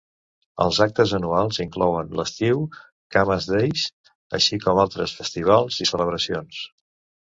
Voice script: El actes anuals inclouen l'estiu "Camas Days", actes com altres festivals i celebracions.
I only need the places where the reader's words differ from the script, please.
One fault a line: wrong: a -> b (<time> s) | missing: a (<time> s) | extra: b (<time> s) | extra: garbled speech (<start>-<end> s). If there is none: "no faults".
wrong: El -> Els (0.6 s)
wrong: actes -> així (4.4 s)